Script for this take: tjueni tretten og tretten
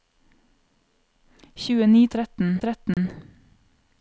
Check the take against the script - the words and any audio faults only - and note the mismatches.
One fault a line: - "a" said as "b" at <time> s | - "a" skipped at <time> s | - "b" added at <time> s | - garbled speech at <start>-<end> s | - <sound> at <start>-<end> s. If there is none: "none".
- dropout at 2.9-3.0 s